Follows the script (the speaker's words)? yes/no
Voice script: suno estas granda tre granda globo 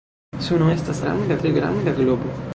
yes